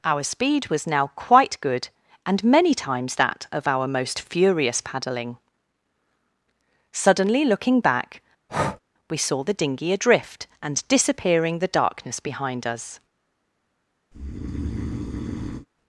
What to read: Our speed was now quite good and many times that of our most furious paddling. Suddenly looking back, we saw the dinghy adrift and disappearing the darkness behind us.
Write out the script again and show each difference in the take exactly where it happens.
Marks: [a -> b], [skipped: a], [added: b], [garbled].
Our speed was now quite good and many times that of our most furious paddling. Suddenly looking back, we saw the dinghy adrift and disappearing the darkness behind us.